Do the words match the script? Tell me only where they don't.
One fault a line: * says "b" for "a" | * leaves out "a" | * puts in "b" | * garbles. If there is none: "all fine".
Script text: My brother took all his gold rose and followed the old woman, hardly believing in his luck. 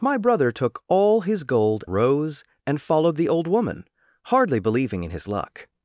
all fine